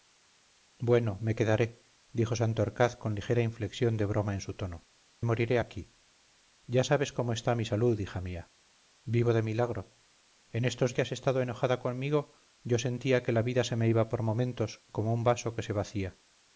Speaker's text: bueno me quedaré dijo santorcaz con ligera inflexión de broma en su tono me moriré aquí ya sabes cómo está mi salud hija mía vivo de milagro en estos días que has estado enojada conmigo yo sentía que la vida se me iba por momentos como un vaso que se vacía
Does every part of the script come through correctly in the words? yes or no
no